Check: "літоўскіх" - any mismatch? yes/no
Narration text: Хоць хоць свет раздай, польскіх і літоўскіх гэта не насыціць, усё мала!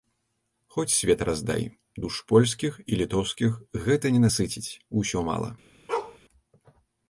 no